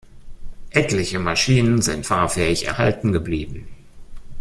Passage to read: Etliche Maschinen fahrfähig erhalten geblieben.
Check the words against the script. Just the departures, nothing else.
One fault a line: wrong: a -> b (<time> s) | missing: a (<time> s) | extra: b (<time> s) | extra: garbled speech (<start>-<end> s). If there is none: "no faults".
extra: sind (1.8 s)